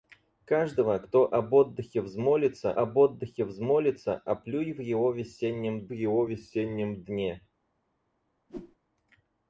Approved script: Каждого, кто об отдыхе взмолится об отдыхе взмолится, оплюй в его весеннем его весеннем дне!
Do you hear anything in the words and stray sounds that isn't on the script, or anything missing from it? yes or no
yes